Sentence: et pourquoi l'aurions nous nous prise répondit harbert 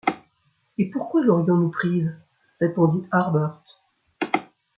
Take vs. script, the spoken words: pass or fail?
fail